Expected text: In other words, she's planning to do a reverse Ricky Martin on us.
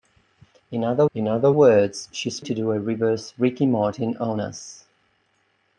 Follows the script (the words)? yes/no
no